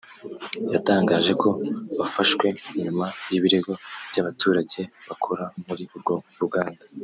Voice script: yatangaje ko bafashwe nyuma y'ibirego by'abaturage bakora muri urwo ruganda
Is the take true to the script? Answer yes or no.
yes